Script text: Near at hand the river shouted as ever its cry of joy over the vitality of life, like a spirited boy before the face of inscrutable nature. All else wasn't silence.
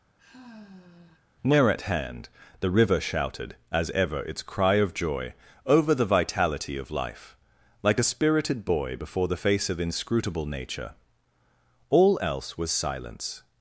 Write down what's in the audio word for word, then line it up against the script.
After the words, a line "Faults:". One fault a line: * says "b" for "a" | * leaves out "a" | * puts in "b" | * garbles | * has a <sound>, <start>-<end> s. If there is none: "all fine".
Near at hand the river shouted as ever its cry of joy over the vitality of life, like a spirited boy before the face of inscrutable nature. All else was silence.
Faults:
* has a sigh, 0.2-1.3 s
* says "was" for "wasn't"